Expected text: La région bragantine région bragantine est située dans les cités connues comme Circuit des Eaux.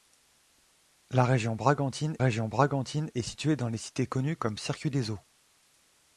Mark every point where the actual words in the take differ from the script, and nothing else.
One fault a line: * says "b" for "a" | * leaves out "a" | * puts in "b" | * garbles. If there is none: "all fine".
all fine